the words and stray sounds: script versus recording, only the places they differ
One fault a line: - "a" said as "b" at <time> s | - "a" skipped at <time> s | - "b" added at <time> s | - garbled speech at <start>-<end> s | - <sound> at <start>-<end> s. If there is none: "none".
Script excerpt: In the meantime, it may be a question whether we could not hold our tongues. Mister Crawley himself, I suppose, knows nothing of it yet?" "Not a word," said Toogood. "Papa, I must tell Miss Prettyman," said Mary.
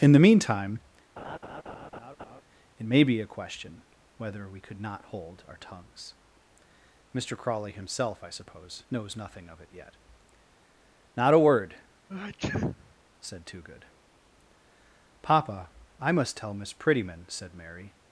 - laugh at 1.2-2.4 s
- sneeze at 12.1-12.9 s